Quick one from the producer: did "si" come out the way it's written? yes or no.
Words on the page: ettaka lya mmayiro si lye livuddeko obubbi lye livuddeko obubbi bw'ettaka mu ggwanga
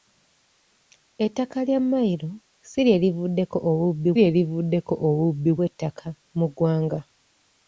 yes